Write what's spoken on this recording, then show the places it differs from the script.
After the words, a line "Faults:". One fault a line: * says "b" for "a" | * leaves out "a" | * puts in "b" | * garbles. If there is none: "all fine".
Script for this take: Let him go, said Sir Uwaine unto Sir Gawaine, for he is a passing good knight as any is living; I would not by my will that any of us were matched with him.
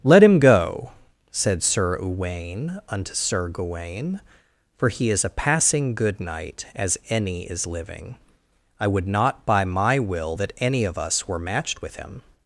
Let him go, said Sir Uwaine unto Sir Gawaine, for he is a passing good knight as any is living; I would not by my will that any of us were matched with him.
Faults:
all fine